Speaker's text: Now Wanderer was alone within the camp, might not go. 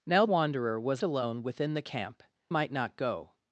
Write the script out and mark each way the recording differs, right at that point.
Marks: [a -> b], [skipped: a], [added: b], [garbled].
Now Wanderer was alone within the camp, might not go.